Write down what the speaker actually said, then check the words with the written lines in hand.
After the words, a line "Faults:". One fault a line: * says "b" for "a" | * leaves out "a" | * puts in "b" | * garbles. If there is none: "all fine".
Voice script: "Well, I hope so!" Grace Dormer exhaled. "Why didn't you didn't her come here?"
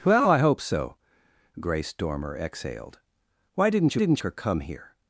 "Well, I hope so!" Grace Dormer exhaled. "Why didn't you didn't her come here?"
Faults:
all fine